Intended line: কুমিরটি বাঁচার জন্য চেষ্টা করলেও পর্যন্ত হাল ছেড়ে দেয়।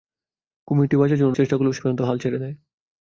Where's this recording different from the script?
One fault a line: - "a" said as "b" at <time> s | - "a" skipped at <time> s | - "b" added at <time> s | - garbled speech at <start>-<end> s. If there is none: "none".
none